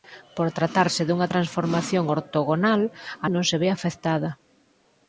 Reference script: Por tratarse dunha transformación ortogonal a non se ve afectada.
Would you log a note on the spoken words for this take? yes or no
no